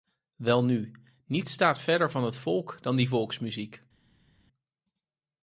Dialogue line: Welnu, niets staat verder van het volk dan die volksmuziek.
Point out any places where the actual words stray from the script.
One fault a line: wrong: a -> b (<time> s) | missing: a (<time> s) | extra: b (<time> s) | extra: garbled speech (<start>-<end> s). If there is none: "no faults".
no faults